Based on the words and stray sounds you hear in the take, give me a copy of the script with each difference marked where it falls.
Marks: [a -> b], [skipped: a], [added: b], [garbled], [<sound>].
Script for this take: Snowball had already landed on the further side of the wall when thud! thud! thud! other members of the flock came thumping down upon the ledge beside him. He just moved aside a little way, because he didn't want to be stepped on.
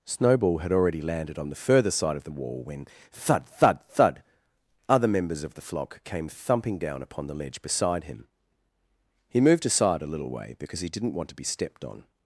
Snowball had already landed on the further side of the wall when thud! thud! thud! other members of the flock came thumping down upon the ledge beside him. He [skipped: just] moved aside a little way, because he didn't want to be stepped on.